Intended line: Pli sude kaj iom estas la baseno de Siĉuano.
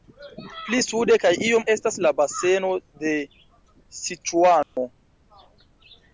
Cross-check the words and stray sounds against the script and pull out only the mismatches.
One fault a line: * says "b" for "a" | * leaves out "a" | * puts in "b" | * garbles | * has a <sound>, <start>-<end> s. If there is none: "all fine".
* has a dropout, 4.6-4.8 s